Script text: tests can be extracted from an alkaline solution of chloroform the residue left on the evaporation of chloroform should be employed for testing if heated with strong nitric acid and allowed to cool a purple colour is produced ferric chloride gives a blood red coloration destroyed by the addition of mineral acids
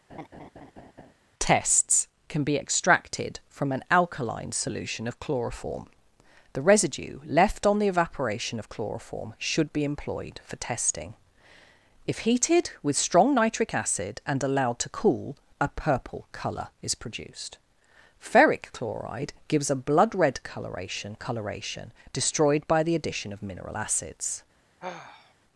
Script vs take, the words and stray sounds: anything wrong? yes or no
yes